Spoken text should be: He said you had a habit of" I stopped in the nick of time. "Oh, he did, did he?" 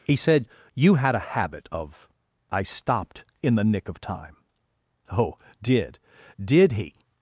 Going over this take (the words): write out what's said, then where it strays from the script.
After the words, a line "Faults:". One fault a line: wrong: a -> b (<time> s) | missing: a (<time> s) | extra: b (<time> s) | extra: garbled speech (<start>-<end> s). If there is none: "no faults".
He said you had a habit of" I stopped in the nick of time. "Oh, did, did he?"
Faults:
missing: he (5.4 s)